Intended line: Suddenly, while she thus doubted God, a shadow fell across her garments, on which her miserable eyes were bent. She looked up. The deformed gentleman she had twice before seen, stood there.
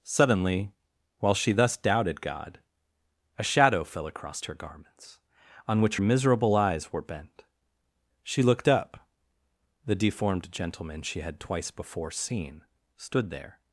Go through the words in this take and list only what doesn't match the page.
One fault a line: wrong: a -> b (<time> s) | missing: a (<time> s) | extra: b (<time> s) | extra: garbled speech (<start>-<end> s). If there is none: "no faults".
missing: her (6.0 s)